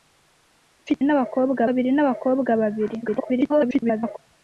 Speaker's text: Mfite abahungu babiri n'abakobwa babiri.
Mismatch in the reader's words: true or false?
true